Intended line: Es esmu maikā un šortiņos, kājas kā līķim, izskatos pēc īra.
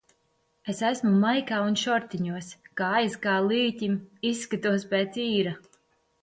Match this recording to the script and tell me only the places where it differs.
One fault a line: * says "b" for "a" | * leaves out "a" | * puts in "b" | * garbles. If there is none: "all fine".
all fine